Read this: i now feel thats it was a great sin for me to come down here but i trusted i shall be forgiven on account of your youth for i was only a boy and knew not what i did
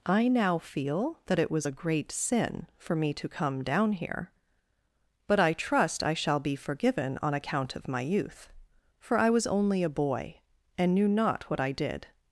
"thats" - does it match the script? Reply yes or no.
no